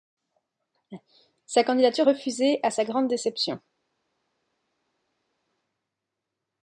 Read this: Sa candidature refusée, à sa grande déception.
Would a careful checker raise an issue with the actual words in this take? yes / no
no